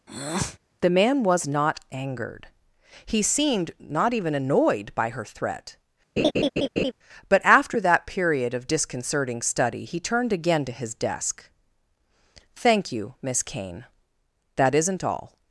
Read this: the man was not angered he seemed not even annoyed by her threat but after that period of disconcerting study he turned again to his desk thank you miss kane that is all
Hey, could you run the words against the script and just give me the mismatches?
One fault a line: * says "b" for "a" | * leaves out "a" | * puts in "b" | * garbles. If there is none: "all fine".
* says "isn't" for "is"